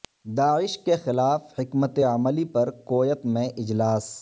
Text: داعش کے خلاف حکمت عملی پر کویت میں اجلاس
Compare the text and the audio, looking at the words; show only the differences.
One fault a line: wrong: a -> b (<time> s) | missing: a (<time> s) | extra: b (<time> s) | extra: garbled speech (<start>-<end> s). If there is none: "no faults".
no faults